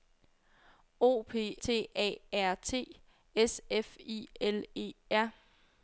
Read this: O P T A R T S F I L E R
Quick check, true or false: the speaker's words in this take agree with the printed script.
true